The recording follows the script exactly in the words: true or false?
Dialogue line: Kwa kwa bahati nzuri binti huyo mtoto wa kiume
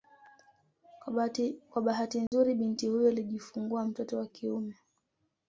false